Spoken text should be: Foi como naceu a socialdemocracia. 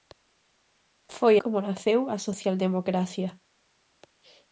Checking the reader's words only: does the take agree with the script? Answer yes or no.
yes